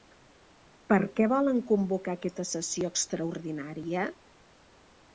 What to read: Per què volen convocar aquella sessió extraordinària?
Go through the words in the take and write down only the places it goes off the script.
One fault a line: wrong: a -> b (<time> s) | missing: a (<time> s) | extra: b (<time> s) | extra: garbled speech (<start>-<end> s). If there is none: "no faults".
wrong: aquella -> aquesta (2.2 s)